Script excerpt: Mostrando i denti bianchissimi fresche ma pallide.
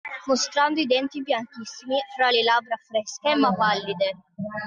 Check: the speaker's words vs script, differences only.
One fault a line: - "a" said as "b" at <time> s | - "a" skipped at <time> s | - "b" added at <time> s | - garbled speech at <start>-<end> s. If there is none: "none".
- "fra le labbra" added at 2.1 s